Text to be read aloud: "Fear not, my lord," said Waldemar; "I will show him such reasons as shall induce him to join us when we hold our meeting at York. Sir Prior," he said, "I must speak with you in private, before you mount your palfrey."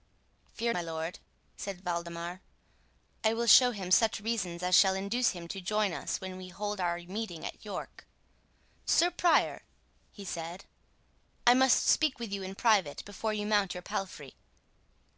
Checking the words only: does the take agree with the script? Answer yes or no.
no